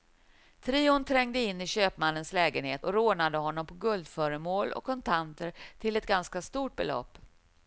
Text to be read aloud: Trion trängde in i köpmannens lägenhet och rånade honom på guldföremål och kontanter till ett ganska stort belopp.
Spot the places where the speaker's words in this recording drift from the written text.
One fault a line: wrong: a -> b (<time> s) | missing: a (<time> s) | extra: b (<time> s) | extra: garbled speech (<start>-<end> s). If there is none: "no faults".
no faults